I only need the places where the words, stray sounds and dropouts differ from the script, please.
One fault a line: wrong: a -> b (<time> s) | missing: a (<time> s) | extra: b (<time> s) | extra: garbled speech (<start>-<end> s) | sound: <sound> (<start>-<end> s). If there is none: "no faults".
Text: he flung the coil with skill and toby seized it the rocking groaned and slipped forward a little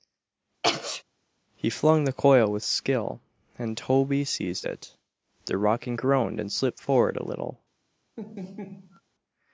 sound: sneeze (0.6-1.0 s)
sound: laugh (8.2-9.0 s)